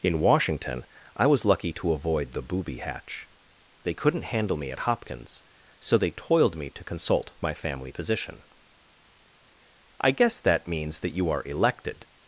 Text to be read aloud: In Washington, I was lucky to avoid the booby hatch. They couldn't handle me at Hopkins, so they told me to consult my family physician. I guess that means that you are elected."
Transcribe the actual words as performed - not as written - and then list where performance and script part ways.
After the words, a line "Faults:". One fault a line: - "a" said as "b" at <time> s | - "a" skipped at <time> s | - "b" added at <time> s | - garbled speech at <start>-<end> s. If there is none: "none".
In Washington, I was lucky to avoid the booby hatch. They couldn't handle me at Hopkins, so they toiled me to consult my family physician. I guess that means that you are elected."
Faults:
- "told" said as "toiled" at 6.1 s